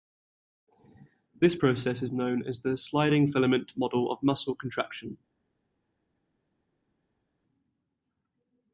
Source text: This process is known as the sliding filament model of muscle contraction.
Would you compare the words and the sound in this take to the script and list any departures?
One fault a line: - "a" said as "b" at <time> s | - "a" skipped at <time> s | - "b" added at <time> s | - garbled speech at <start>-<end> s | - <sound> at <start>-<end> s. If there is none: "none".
none